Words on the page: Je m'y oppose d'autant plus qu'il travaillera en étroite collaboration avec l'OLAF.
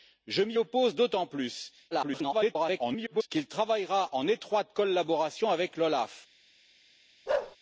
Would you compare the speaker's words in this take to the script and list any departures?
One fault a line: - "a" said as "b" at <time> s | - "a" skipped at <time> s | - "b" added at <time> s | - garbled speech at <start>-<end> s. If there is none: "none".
- garbled speech at 1.9-3.3 s